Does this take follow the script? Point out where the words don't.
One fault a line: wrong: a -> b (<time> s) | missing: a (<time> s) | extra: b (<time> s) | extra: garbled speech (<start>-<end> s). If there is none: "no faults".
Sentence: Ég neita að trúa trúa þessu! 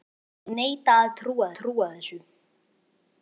no faults